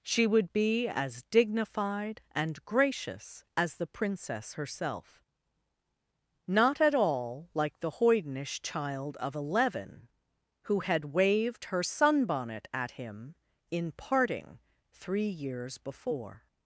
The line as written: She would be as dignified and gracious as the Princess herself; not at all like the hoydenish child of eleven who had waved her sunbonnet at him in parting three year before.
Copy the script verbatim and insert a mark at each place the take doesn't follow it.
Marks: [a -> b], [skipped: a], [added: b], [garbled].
She would be as dignified and gracious as the Princess herself; not at all like the hoydenish child of eleven who had waved her sunbonnet at him in parting three [year -> years] before.